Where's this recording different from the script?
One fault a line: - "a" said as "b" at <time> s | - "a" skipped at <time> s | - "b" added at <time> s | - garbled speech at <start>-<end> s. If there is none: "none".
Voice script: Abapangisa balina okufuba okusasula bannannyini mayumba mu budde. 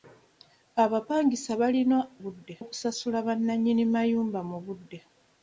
- "okufuba" said as "budde" at 2.2 s